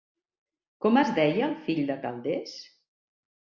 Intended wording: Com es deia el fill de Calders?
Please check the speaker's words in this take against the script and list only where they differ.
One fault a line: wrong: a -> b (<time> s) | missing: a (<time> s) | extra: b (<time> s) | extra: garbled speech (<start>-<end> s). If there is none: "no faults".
no faults